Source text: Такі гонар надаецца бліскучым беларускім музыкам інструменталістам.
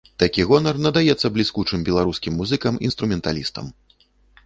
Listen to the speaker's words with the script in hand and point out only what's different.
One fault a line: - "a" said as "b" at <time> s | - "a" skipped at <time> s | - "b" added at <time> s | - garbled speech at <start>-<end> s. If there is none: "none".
none